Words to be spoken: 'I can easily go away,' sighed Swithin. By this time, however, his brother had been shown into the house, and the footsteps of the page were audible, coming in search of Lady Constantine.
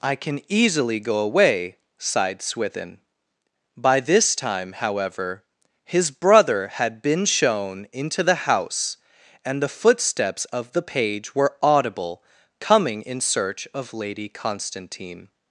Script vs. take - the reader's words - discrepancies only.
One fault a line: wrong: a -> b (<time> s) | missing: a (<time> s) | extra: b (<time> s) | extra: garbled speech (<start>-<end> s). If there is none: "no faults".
no faults